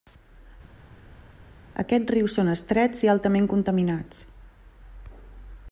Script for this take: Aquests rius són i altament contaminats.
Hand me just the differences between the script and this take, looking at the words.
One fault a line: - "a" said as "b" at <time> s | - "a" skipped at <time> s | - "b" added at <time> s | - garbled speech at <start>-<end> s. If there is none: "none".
- "estrets" added at 2.5 s